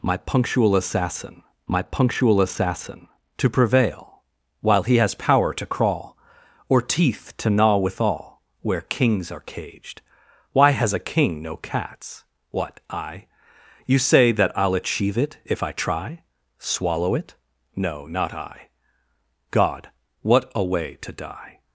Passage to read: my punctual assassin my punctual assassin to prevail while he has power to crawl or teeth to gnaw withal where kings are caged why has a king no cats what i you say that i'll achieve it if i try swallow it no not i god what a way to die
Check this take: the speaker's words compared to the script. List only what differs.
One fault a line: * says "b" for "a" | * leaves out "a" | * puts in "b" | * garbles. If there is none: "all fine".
all fine